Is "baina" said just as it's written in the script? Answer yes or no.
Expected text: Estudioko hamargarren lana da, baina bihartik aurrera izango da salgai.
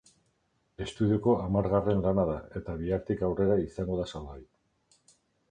no